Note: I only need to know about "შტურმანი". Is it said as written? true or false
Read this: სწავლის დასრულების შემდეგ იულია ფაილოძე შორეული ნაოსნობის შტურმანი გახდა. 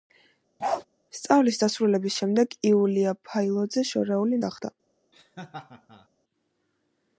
false